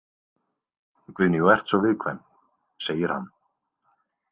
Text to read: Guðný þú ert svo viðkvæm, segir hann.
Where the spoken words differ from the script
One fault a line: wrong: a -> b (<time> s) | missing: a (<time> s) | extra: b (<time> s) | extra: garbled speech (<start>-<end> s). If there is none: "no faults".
no faults